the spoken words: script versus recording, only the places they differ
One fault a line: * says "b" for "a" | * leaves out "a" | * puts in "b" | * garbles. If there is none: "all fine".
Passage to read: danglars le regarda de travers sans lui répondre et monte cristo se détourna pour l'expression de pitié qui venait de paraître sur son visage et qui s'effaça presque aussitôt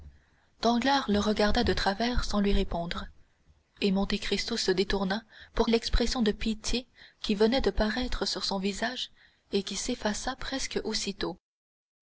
all fine